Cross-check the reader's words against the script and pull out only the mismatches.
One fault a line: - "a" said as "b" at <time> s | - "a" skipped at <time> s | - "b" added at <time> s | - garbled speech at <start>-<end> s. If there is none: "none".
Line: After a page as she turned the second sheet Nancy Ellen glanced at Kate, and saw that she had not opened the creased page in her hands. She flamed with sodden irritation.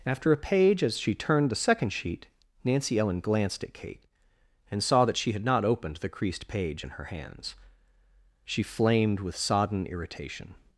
none